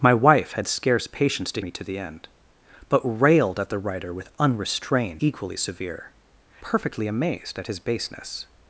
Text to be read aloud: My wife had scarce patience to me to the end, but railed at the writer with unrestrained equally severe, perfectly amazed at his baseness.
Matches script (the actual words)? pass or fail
pass